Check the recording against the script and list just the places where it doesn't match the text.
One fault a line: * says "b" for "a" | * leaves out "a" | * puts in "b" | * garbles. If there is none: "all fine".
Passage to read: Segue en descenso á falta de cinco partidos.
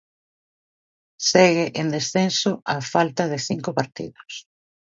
all fine